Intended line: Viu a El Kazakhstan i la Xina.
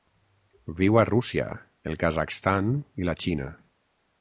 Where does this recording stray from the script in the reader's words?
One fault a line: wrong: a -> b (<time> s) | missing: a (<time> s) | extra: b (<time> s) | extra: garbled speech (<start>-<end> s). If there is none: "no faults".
extra: Rússia (1.1 s)